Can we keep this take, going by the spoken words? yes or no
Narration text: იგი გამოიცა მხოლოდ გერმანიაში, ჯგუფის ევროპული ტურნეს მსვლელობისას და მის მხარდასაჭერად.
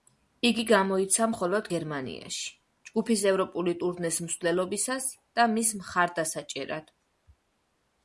yes